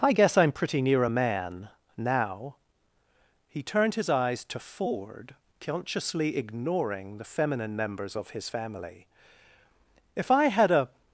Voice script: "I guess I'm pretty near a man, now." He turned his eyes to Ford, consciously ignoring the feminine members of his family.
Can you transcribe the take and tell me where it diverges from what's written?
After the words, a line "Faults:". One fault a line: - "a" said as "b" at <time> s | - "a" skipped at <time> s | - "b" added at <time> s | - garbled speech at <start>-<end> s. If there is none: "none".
"I guess I'm pretty near a man, now." He turned his eyes to Ford, consciously ignoring the feminine members of his family. "If I had a
Faults:
- "If I had a" added at 10.1 s